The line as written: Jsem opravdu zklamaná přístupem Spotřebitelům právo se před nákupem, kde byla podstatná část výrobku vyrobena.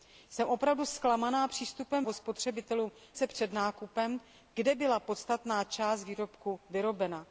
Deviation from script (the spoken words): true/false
false